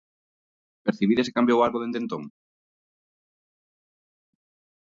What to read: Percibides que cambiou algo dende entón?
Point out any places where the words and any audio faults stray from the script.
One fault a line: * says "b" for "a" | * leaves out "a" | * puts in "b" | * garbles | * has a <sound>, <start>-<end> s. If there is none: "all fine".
all fine